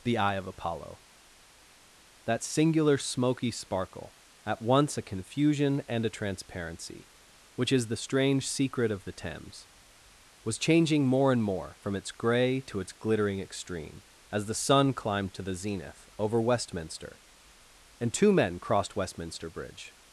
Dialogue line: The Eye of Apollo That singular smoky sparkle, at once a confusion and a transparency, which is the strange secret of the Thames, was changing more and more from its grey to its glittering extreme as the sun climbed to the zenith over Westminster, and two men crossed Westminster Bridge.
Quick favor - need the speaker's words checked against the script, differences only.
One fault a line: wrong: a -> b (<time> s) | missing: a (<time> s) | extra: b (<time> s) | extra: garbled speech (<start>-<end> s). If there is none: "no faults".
no faults